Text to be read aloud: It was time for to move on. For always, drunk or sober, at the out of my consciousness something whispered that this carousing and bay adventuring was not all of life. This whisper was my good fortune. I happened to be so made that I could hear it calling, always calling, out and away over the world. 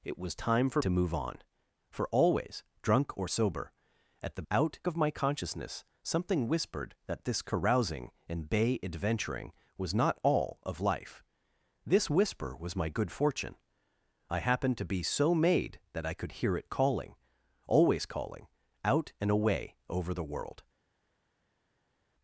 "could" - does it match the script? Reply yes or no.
yes